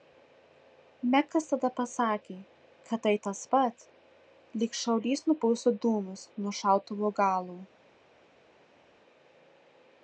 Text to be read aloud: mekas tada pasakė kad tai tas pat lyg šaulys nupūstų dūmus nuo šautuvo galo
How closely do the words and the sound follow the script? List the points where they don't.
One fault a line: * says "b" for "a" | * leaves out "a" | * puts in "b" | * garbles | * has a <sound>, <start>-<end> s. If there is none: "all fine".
all fine